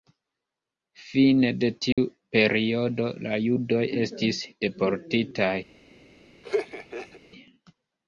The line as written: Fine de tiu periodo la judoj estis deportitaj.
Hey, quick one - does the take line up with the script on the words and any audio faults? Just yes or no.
no